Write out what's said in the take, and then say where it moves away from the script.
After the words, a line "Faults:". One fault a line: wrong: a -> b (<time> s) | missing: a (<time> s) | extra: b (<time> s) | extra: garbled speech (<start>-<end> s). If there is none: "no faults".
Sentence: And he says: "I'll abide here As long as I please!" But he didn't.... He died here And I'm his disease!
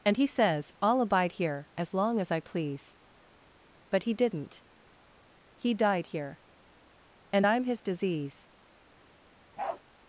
And he says: "I'll abide here As long as I please!" But he didn't.... He died here And I'm his disease!
Faults:
no faults